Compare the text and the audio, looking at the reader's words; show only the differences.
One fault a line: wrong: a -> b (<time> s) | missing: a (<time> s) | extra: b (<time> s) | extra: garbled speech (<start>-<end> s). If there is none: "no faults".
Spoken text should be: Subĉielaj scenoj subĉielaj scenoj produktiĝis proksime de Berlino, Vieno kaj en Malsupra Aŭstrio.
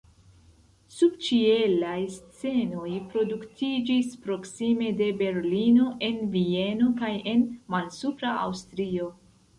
missing: subĉielaj scenoj (2.9 s)
extra: en (6.1 s)